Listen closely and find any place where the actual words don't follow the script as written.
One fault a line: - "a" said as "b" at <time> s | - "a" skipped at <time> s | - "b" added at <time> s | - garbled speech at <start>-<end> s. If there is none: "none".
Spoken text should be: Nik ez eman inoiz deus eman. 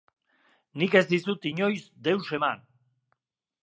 - "eman" said as "dizut" at 1.1 s